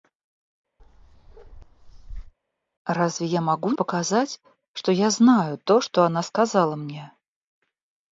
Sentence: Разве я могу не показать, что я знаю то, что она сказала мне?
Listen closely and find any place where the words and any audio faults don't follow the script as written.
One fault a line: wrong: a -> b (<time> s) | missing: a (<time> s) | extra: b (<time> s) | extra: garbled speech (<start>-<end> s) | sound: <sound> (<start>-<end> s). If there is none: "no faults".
sound: bark (0.8-2.3 s)
missing: не (3.7 s)